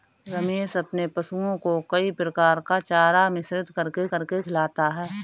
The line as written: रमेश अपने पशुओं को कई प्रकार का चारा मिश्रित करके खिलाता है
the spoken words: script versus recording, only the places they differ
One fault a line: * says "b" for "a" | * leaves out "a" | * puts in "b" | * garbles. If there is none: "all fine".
* puts in "करके"